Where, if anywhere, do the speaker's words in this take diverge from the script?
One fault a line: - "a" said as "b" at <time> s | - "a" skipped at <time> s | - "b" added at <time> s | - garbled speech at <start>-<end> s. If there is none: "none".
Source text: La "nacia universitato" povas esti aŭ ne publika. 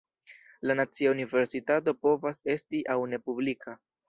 none